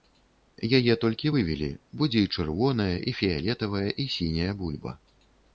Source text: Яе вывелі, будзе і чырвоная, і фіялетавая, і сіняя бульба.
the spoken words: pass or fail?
fail